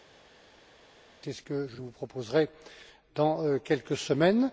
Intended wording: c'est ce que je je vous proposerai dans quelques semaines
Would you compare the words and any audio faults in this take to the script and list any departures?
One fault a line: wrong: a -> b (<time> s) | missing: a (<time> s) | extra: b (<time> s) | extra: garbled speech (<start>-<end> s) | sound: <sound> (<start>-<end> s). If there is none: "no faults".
no faults